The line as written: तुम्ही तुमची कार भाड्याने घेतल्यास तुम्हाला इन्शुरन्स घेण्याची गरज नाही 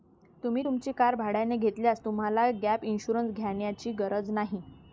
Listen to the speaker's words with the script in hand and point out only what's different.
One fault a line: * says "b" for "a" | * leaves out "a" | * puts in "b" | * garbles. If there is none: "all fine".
* puts in "गॅप"